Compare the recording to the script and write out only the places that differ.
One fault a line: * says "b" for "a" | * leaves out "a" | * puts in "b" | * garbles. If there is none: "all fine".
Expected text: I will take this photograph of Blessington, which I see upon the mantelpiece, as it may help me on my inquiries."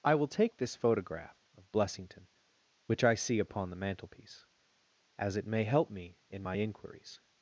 * says "in" for "on"